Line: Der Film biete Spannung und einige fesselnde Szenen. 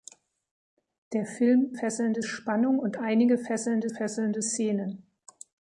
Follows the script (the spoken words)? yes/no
no